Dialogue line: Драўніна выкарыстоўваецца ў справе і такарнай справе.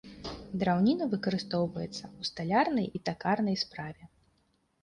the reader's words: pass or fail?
fail